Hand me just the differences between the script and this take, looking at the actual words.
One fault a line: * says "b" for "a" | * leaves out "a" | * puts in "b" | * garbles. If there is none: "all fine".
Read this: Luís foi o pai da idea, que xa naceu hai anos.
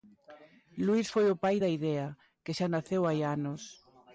all fine